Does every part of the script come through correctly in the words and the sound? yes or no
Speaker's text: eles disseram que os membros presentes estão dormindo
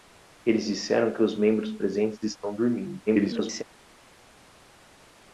no